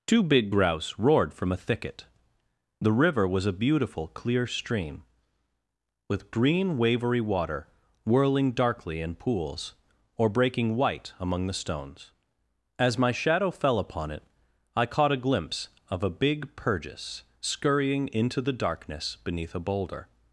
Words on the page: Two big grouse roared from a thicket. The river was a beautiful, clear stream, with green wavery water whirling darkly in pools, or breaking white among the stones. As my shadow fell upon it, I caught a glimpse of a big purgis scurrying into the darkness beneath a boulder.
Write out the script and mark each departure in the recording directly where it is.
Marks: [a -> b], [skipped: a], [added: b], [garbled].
Two big grouse roared from a thicket. The river was a beautiful, clear stream, with green wavery water whirling darkly in pools, or breaking white among the stones. As my shadow fell upon it, I caught a glimpse of a big purgis scurrying into the darkness beneath a boulder.